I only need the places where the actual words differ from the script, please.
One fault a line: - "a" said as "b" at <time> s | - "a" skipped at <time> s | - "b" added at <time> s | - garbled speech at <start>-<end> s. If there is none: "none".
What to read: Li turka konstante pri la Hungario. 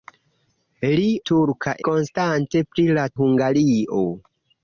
none